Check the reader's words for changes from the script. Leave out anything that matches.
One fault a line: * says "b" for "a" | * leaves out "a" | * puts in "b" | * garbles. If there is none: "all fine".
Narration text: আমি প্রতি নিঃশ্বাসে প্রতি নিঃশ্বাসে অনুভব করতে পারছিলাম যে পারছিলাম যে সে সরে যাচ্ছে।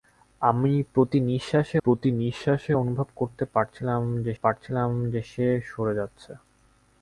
all fine